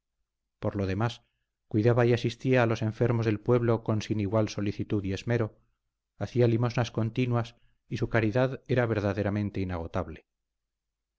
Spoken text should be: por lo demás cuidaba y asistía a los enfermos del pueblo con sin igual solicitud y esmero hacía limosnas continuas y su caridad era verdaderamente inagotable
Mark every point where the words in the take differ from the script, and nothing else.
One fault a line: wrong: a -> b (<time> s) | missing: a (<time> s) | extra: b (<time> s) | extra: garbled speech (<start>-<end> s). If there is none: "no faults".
no faults